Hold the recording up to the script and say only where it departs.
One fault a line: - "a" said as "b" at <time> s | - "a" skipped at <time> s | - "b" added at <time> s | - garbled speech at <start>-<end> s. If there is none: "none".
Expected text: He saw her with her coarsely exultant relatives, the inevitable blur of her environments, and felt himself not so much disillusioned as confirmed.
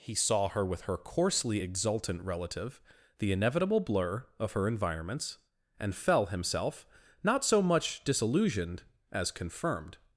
- "relatives" said as "relative" at 2.2 s
- "felt" said as "fell" at 6.0 s